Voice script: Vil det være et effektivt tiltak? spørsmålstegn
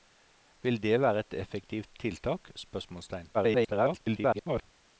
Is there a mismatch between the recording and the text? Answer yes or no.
yes